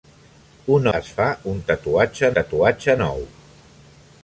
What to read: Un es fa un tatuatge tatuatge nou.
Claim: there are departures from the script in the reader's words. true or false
false